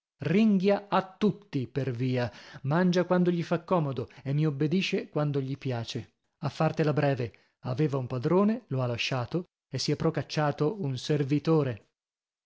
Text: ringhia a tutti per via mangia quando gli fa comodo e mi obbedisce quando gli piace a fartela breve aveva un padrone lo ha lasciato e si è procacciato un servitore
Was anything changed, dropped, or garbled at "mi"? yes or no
no